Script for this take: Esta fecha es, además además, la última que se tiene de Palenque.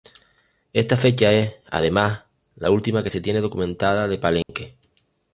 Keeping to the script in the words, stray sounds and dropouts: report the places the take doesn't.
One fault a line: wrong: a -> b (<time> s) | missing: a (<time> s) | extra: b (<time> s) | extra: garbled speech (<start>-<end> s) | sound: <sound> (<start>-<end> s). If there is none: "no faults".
missing: además (2.2 s)
extra: documentada (3.4 s)
sound: dropout (4.4-4.5 s)